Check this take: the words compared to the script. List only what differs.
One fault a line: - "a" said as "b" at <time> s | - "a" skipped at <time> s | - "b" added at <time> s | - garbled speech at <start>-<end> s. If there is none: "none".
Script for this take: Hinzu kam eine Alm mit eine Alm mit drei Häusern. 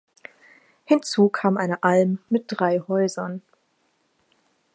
- "eine Alm mit" skipped at 2.5 s